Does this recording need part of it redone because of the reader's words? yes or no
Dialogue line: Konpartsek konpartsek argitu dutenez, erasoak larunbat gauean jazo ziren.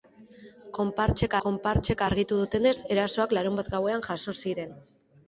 no